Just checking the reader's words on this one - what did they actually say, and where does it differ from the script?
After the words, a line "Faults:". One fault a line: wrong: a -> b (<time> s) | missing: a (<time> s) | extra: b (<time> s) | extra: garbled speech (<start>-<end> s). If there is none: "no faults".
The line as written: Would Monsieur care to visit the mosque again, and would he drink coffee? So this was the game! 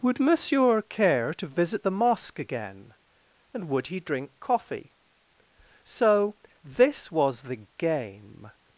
Would Monsieur care to visit the mosque again, and would he drink coffee? So this was the game!
Faults:
no faults